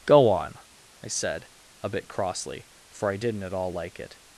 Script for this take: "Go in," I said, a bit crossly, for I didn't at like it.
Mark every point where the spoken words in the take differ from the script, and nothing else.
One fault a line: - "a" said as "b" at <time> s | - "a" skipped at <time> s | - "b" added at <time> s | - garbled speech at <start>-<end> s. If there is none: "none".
- "in" said as "on" at 0.3 s
- "all" added at 3.5 s